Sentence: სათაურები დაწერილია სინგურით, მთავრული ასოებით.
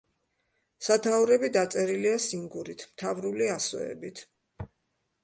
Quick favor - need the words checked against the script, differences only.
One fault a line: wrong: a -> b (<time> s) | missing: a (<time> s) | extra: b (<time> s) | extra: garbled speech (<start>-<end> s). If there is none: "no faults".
no faults